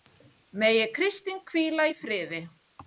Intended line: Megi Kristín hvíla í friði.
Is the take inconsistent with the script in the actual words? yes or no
no